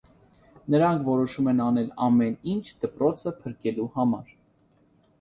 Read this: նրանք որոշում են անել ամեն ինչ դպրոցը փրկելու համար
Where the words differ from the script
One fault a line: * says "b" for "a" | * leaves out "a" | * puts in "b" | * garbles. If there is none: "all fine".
all fine